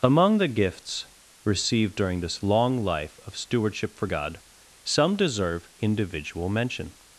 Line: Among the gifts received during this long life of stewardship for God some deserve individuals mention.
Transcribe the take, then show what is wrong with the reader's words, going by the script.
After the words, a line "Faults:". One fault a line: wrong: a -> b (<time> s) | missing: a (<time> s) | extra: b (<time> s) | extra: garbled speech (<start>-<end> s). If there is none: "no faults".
Among the gifts received during this long life of stewardship for God some deserve individual mention.
Faults:
wrong: individuals -> individual (5.8 s)